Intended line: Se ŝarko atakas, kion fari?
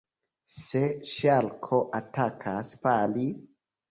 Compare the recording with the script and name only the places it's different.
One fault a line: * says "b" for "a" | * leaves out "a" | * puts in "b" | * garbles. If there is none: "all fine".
* leaves out "kion"